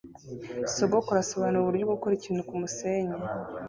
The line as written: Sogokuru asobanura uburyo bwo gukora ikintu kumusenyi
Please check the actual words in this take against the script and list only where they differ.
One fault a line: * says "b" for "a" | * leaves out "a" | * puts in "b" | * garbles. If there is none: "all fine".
all fine